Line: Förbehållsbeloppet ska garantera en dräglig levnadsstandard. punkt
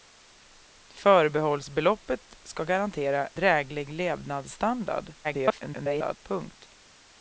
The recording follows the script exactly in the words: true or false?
false